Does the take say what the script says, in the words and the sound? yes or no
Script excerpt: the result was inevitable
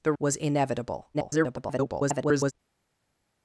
no